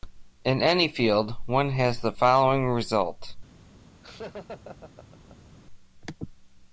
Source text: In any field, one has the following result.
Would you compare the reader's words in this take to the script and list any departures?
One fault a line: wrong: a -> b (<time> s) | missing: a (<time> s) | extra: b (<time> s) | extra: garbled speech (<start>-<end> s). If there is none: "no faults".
no faults